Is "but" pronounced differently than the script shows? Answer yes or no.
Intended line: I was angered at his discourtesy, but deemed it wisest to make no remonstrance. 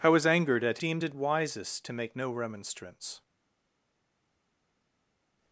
yes